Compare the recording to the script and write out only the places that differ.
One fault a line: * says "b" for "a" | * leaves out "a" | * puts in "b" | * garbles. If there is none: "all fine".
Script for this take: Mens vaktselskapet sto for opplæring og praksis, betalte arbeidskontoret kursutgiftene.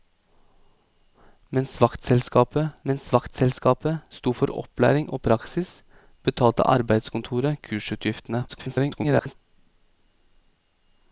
* puts in "mens vaktselskapet"
* garbles